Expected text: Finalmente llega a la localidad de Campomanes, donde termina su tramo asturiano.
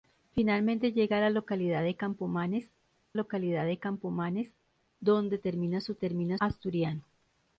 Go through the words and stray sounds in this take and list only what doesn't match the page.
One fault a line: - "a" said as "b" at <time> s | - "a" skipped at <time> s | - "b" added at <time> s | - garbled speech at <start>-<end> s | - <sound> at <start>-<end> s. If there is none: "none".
- "localidad de Campomanes" added at 3.1 s
- "tramo" said as "termina" at 6.0 s